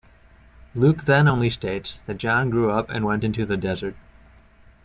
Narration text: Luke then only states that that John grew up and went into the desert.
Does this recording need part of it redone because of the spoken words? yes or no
yes